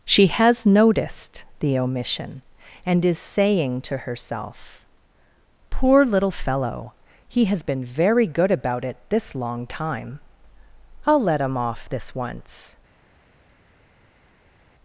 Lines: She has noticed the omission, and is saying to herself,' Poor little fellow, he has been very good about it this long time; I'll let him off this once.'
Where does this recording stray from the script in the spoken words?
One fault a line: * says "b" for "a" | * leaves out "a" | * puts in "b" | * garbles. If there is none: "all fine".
all fine